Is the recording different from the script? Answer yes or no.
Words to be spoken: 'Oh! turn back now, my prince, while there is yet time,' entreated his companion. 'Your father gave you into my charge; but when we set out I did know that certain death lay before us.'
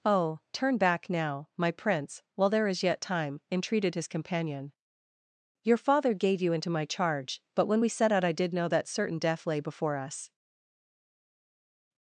no